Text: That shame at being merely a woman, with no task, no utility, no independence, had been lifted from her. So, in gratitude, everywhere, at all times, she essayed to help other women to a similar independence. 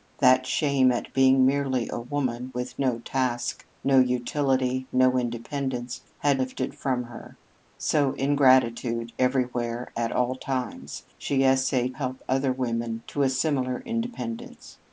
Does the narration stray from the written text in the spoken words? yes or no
yes